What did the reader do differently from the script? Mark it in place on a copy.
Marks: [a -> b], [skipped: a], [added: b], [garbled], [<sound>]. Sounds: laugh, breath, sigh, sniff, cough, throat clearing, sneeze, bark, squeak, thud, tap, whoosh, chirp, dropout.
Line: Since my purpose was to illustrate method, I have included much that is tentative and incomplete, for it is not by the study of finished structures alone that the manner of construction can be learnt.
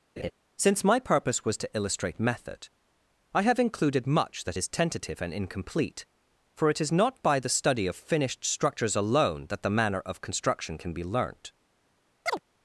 [laugh] Since my purpose was to illustrate method, I have included much that is tentative and incomplete, for it is not by the study of finished structures alone that the manner of construction can be learnt. [chirp]